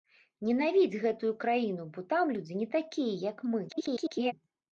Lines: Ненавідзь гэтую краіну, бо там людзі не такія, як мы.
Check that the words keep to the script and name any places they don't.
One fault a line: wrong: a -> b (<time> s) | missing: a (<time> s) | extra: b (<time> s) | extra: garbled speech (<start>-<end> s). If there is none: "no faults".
extra: garbled speech (3.7-4.3 s)